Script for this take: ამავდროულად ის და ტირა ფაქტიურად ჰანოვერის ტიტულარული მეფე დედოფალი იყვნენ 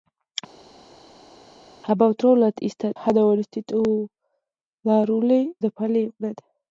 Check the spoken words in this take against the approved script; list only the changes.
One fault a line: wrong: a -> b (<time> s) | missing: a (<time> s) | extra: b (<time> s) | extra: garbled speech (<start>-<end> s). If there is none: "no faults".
missing: ტირა ფაქტიურად (2.9 s)
missing: მეფე (5.4 s)